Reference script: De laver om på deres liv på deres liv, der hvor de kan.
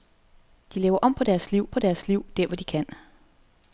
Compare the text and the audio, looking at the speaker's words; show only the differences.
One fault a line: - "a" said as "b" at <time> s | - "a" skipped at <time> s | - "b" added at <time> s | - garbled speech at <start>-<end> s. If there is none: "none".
none